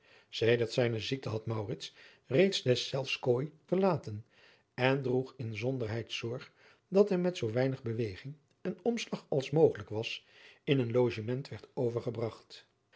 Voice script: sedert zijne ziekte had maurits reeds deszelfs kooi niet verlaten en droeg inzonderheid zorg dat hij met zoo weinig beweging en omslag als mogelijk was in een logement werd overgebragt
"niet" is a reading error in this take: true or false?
true